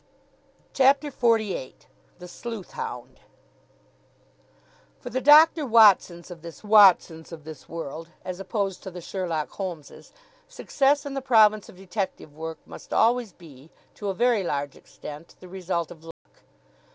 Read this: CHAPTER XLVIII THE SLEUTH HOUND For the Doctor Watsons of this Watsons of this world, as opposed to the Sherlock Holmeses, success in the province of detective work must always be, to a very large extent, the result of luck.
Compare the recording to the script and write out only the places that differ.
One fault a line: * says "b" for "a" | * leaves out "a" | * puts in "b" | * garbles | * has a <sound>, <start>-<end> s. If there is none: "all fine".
* has a dropout, 16.1-16.3 s